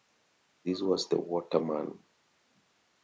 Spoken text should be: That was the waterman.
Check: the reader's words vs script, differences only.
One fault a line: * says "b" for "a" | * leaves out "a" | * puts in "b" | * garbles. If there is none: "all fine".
* says "This" for "That"